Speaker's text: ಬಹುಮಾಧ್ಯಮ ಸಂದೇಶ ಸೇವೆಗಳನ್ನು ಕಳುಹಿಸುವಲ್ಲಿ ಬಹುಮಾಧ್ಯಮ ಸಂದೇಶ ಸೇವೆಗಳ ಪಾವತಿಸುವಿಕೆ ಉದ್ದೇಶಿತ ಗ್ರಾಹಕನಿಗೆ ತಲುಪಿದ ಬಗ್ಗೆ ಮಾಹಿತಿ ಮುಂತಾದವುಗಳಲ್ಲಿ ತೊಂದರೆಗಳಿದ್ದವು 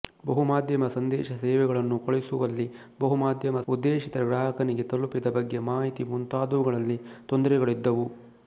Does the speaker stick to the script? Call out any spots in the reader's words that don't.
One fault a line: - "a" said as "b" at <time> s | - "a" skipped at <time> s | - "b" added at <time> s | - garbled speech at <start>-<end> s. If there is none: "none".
- "ಸಂದೇಶ ಸೇವೆಗಳ ಪಾವತಿಸುವಿಕೆ" skipped at 3.6 s